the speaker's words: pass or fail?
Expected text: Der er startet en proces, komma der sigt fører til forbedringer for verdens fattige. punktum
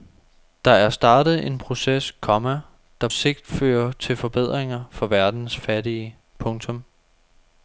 pass